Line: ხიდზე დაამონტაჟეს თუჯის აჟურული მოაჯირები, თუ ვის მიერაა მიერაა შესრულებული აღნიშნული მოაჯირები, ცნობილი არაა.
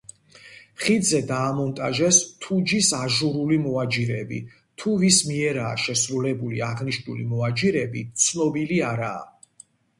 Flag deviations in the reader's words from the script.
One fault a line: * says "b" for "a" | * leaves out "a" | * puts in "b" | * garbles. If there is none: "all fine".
* leaves out "მიერაა"